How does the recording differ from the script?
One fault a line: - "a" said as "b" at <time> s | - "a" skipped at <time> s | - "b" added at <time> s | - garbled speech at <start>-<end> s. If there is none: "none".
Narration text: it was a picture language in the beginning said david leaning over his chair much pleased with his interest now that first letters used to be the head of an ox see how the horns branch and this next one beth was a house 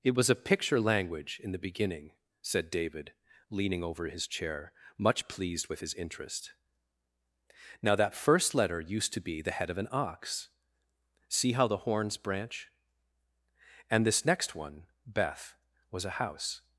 - "letters" said as "letter" at 8.5 s